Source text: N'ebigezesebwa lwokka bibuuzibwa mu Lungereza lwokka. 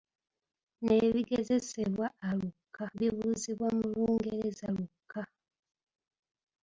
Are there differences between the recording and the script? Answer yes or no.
no